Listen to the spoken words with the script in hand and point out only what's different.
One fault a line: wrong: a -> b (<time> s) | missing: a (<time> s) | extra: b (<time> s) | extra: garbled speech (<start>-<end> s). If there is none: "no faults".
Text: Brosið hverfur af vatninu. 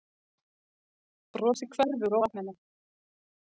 no faults